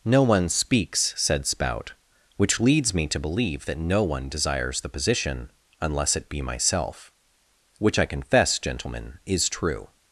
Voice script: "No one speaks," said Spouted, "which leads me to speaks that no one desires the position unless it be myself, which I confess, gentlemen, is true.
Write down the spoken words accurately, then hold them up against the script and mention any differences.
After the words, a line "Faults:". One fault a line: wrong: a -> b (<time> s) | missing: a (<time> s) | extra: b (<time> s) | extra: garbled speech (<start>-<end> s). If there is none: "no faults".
"No one speaks," said Spout, "which leads me to believe that no one desires the position unless it be myself, which I confess, gentlemen, is true.
Faults:
wrong: Spouted -> Spout (1.4 s)
wrong: speaks -> believe (3.2 s)